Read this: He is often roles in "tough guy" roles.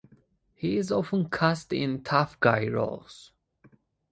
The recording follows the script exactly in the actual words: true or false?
false